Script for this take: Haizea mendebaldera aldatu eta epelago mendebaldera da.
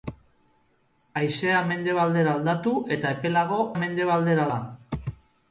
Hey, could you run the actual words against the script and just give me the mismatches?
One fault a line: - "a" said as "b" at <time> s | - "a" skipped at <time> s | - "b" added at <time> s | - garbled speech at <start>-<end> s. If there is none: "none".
none